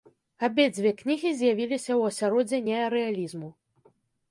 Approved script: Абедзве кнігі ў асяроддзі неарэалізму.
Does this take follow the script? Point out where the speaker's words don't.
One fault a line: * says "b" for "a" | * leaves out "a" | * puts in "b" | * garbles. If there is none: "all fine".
* puts in "з'явіліся"